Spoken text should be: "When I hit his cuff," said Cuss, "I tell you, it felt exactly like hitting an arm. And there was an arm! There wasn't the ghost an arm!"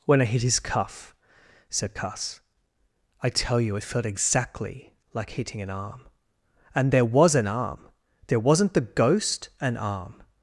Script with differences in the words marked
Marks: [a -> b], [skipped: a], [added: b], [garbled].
"When I hit his cuff," said Cuss, "I tell you, it felt exactly like hitting an arm. And there was an arm! There wasn't the ghost an arm!"